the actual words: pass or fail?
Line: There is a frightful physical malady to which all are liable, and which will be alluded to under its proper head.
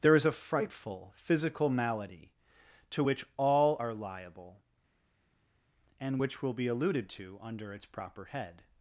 pass